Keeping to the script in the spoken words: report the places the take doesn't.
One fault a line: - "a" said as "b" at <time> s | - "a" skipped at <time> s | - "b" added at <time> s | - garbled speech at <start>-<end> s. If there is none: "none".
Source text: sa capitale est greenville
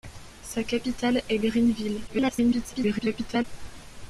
- garbled speech at 2.1-3.4 s